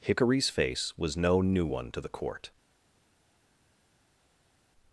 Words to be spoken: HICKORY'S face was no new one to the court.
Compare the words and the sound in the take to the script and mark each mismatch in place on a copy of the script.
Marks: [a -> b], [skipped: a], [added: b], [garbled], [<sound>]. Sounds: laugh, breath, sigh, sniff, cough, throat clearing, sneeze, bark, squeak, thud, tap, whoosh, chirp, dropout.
HICKORY'S face was no new one to the court.